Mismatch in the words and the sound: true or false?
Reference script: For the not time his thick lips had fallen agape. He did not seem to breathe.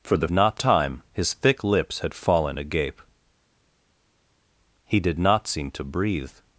false